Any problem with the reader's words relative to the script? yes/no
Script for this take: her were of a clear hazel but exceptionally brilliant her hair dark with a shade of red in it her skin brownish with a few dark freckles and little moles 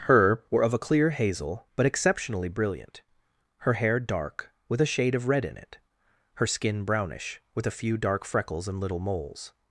no